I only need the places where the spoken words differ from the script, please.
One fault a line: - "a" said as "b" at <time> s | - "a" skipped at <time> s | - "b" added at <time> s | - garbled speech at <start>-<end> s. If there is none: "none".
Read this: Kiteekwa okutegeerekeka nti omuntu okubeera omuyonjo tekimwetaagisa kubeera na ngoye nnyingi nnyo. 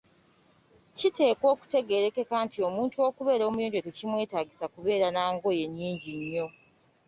none